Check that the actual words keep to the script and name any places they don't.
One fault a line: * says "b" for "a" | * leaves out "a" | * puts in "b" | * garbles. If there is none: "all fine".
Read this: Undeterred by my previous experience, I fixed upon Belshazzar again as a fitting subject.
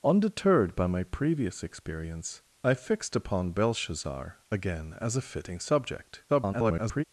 * garbles